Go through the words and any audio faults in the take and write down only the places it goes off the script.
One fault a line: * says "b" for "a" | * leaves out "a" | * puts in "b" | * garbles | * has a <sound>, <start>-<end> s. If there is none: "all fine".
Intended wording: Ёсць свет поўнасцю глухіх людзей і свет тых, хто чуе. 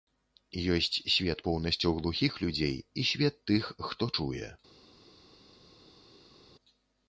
all fine